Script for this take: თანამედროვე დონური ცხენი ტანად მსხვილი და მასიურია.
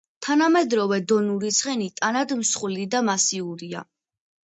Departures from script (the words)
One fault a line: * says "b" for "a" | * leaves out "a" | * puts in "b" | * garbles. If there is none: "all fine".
all fine